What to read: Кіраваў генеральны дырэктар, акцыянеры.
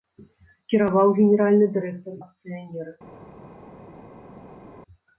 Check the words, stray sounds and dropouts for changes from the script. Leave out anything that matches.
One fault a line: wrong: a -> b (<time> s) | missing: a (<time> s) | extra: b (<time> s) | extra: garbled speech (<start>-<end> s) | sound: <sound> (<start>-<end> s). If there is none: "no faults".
no faults